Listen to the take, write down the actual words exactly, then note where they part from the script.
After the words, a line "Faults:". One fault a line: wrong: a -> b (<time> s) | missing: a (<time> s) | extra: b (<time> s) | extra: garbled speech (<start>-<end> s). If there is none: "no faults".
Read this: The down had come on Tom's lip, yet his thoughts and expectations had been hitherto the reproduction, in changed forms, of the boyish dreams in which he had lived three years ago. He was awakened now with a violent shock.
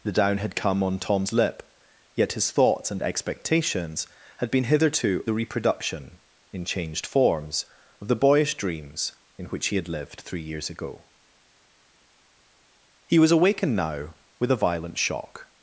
The down had come on Tom's lip, yet his thoughts and expectations had been hitherto the reproduction, in changed forms, of the boyish dreams in which he had lived three years ago. He was awakened now with a violent shock.
Faults:
no faults